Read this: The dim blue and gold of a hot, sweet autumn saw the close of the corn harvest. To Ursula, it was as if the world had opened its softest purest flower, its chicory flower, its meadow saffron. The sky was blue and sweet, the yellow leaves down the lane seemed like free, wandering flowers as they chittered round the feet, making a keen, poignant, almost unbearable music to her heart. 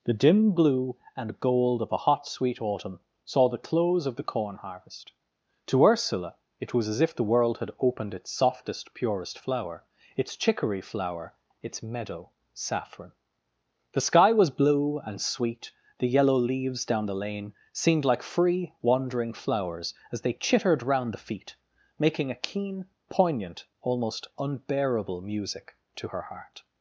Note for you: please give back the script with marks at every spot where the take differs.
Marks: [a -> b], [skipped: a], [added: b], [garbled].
The dim blue and gold of a hot, sweet autumn saw the close of the corn harvest. To Ursula, it was as if the world had opened its softest purest flower, its chicory flower, its meadow saffron. The sky was blue and sweet, the yellow leaves down the lane seemed like free, wandering flowers as they chittered round the feet, making a keen, poignant, almost unbearable music to her heart.